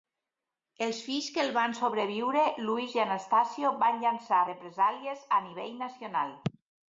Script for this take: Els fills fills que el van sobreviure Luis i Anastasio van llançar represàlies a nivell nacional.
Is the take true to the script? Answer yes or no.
no